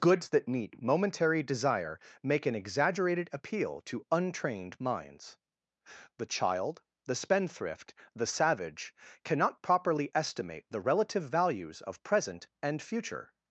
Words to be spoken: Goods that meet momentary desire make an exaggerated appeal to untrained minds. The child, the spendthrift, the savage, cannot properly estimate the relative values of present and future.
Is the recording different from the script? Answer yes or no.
no